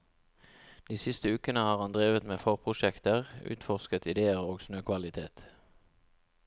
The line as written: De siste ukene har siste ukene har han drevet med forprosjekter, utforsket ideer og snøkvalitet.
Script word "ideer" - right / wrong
right